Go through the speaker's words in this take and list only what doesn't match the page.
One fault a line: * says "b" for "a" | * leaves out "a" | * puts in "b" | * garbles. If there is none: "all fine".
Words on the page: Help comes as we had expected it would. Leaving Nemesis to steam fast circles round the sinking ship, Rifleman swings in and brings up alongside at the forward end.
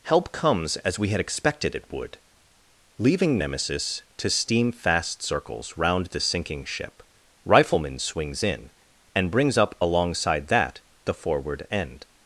* says "that" for "at"